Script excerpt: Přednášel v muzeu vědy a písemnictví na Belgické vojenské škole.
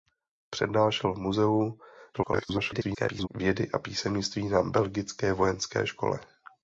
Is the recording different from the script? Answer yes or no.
yes